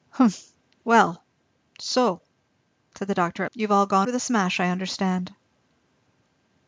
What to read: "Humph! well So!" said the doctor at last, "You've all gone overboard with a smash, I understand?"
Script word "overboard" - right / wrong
wrong